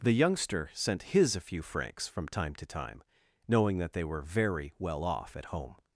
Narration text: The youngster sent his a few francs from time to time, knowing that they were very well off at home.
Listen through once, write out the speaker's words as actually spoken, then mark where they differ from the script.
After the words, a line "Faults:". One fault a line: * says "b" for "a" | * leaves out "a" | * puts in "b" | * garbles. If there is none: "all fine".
The youngster sent his a few francs from time to time, knowing that they were very well off at home.
Faults:
all fine